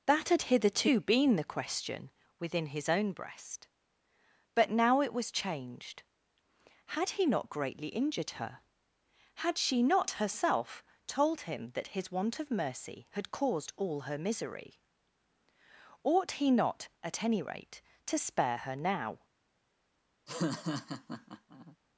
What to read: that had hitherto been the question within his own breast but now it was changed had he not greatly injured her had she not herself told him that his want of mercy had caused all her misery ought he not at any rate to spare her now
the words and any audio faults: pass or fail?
fail